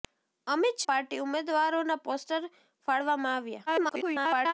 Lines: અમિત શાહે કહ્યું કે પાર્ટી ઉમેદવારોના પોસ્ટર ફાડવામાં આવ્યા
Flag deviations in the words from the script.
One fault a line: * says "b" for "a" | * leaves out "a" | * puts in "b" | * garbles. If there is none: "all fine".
* leaves out "શાહે કહ્યું કે"
* garbles